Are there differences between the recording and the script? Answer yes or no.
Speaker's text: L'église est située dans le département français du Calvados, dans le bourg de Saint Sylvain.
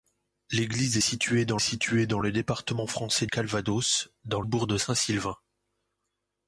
yes